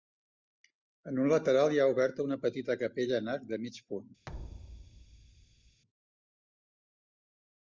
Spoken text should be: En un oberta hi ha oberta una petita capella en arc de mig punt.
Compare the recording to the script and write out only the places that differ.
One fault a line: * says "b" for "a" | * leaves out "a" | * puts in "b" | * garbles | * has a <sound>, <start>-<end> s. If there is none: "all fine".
* says "lateral" for "oberta"
* has a thud, 4.3-5.8 s